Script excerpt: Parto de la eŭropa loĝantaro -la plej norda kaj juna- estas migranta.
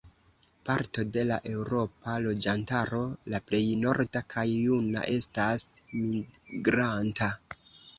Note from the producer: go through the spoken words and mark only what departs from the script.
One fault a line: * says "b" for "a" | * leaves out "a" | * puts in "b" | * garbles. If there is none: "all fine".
all fine